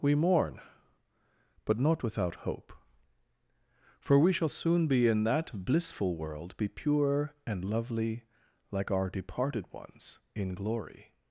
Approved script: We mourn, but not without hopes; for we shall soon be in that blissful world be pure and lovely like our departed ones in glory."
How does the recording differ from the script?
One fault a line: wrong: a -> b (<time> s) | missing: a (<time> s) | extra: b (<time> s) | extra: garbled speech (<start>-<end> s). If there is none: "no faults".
wrong: hopes -> hope (2.4 s)